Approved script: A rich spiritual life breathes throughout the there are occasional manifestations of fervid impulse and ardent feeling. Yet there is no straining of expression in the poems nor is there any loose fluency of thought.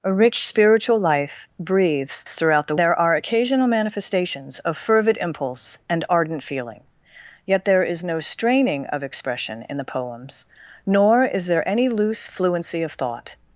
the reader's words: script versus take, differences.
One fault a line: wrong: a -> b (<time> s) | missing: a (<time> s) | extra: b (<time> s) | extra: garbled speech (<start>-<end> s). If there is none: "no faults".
no faults